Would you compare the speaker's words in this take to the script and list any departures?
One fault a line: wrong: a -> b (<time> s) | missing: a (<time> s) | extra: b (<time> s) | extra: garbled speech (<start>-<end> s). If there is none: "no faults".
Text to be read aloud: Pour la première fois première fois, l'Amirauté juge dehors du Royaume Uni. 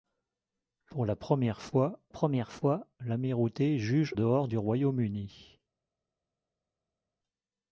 no faults